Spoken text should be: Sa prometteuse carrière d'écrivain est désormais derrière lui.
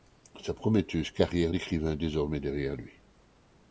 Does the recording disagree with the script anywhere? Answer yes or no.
no